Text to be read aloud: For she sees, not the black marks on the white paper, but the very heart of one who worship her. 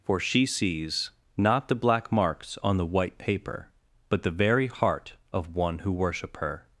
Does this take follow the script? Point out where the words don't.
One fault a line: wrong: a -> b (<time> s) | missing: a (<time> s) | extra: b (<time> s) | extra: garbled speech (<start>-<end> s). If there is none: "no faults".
no faults